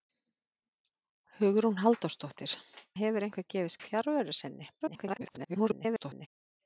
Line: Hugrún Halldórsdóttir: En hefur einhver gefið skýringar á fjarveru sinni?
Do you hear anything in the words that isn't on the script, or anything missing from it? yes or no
yes